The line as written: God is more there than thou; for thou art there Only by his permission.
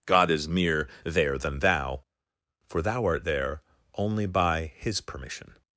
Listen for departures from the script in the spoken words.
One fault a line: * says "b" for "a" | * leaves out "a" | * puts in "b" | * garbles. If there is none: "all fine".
* says "mere" for "more"